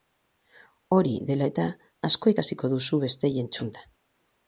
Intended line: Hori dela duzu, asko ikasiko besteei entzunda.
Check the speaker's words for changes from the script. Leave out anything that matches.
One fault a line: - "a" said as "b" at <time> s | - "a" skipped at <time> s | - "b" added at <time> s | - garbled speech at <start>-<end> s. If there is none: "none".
- "duzu" said as "eta" at 1.5 s
- "duzu" added at 2.8 s